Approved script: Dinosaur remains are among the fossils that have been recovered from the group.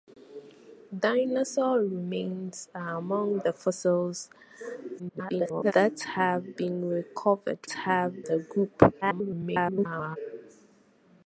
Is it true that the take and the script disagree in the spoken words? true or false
true